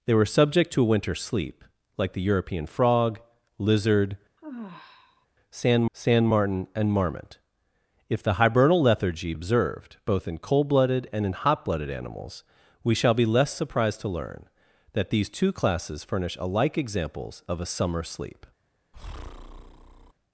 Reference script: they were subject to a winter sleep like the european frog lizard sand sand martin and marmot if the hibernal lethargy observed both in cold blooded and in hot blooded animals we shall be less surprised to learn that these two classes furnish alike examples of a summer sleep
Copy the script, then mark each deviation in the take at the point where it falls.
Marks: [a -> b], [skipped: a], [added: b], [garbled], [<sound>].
they were subject to a winter sleep like the european frog lizard [sigh] sand sand martin and marmot if the hibernal lethargy observed both in cold blooded and in hot blooded animals we shall be less surprised to learn that these two classes furnish alike examples of a summer sleep [breath]